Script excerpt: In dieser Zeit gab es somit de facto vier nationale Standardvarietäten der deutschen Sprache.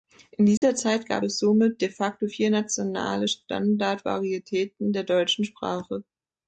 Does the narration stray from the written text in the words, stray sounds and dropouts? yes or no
yes